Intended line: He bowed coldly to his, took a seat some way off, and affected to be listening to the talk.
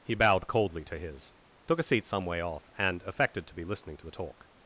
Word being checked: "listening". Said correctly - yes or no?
yes